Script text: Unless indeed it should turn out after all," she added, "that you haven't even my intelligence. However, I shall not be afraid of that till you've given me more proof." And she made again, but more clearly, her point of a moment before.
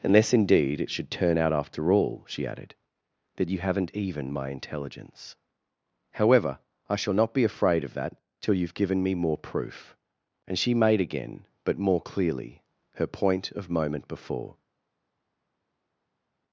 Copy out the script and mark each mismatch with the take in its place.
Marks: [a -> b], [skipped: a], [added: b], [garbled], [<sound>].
Unless indeed it should turn out after all," she added, "that you haven't even my intelligence. However, I shall not be afraid of that till you've given me more proof." And she made again, but more clearly, her point of [skipped: a] moment before.